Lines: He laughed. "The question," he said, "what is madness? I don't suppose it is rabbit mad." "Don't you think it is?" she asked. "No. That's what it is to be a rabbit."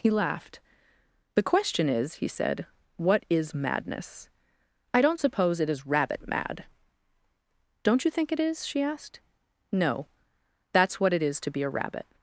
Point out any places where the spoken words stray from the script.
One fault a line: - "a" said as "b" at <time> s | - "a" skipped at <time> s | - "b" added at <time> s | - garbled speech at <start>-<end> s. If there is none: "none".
- "is" added at 1.9 s